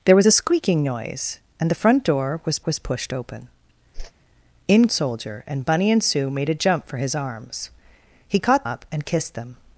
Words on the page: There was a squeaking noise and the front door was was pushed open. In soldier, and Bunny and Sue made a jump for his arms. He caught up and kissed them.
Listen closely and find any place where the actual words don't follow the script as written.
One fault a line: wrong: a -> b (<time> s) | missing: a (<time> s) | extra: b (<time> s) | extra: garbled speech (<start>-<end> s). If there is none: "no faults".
no faults